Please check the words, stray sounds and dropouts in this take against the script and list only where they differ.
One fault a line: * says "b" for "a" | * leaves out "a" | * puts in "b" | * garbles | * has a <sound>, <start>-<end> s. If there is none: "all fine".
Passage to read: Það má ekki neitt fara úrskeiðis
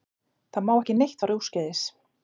all fine